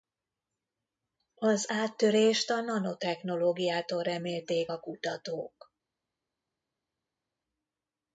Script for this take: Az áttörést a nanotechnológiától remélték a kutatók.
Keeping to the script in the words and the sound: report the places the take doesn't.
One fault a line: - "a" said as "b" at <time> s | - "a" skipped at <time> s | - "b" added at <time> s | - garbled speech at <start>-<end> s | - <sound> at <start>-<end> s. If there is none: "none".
none